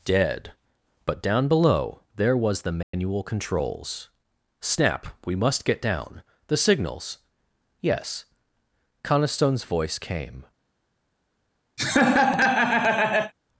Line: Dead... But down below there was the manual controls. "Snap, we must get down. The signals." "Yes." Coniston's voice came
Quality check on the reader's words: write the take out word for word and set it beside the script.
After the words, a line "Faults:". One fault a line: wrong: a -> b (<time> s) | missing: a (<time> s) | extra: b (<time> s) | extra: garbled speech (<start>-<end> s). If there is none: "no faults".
Dead... But down below there was the manual controls. "Snap, we must get down. The signals." "Yes." Coniston's voice came
Faults:
no faults